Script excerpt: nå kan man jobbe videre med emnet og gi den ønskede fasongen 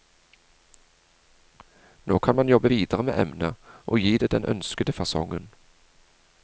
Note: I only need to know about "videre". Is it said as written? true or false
true